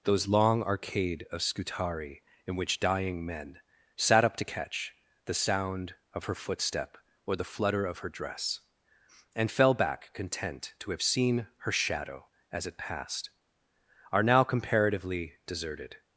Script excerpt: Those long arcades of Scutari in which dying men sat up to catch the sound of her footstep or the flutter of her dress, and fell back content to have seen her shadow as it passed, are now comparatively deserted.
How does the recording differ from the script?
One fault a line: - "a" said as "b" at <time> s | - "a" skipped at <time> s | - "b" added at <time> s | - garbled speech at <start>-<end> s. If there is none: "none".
- "arcades" said as "arcade" at 0.6 s